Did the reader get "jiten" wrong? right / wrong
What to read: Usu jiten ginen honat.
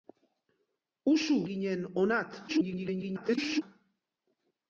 wrong